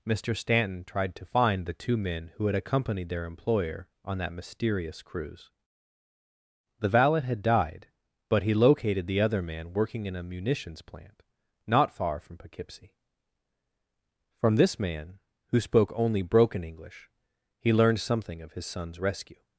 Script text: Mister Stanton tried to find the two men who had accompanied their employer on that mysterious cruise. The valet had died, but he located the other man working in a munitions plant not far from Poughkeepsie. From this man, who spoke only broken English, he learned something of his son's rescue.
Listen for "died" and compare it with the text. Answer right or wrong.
right